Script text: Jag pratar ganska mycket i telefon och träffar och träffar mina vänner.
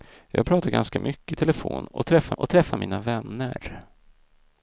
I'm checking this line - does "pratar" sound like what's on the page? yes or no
yes